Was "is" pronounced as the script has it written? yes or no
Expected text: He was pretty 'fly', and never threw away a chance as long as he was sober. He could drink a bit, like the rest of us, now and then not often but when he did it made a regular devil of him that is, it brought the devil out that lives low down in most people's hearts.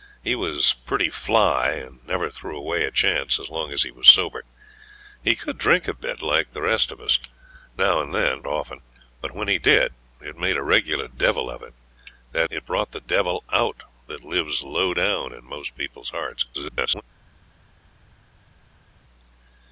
no